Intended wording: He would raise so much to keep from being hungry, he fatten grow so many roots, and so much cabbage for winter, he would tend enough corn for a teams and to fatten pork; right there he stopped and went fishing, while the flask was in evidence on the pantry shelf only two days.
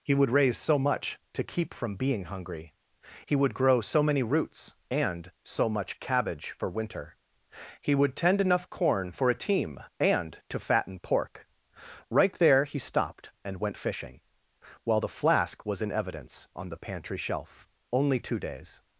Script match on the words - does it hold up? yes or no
no